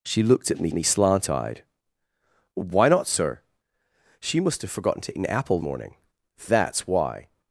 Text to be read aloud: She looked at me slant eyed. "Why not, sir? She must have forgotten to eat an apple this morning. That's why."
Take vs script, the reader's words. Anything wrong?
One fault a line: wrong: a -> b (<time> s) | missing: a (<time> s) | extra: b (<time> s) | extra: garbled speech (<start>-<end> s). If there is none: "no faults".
extra: me (0.7 s)
missing: eat (5.2 s)
missing: this (5.6 s)